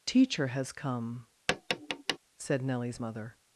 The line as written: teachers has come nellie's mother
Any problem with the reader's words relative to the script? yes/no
yes